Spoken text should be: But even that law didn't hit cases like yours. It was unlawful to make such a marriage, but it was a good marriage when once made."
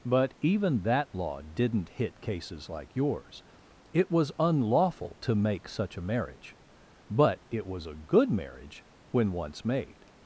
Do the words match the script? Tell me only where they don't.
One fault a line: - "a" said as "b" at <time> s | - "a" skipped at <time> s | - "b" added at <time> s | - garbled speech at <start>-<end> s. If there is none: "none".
none